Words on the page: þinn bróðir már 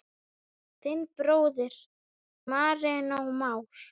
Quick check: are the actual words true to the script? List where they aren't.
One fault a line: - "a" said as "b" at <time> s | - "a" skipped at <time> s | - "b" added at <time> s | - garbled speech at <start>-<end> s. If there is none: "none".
- "marinó" added at 2.5 s